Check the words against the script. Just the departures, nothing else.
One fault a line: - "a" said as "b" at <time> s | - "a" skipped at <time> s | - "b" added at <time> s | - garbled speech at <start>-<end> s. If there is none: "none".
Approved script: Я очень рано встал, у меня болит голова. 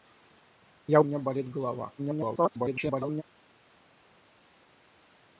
- "очень рано встал" skipped at 1.0 s
- garbled speech at 2.0-3.2 s